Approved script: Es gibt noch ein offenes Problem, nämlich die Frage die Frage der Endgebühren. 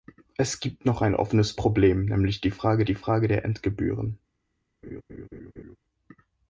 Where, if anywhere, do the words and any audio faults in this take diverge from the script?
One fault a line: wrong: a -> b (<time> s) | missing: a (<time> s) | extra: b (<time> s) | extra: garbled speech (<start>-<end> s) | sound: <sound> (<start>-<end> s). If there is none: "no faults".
sound: laugh (4.8-5.8 s)